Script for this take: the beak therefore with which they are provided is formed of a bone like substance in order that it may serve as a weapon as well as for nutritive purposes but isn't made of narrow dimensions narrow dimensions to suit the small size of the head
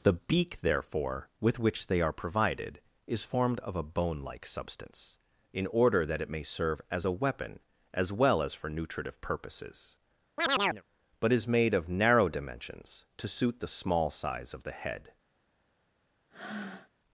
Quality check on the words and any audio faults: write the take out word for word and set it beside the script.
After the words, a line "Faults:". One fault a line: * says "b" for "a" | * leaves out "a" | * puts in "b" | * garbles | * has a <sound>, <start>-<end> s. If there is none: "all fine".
the beak therefore with which they are provided is formed of a bone like substance in order that it may serve as a weapon as well as for nutritive purposes but is made of narrow dimensions to suit the small size of the head
Faults:
* has a chirp, 10.4-10.8 s
* says "is" for "isn't"
* leaves out "narrow dimensions"
* has a breath, 16.3-16.9 s